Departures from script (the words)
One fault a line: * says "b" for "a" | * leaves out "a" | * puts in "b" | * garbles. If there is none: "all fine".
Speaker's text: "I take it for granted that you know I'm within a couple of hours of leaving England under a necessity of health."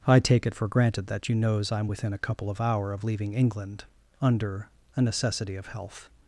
* says "knows" for "know"
* says "hour" for "hours"